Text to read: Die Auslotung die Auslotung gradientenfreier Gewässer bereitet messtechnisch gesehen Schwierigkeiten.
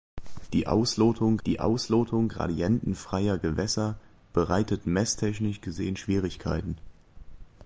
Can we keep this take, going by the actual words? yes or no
yes